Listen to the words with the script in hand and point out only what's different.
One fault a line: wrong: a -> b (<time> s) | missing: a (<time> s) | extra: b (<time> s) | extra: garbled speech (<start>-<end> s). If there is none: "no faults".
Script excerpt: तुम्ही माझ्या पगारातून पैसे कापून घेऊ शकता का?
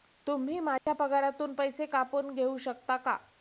no faults